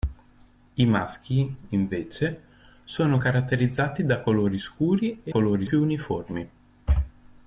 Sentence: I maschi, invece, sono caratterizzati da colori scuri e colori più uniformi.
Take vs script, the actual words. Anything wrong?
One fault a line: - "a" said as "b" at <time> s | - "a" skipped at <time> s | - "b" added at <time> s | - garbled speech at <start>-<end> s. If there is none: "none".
none